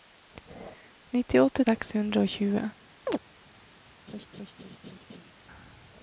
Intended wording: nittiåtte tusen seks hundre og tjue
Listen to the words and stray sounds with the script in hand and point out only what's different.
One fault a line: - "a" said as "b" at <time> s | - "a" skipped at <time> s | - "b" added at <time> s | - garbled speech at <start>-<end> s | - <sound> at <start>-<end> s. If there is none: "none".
- "tusen" skipped at 1.6 s
- chirp at 3.1-3.2 s
- laugh at 4.1-5.3 s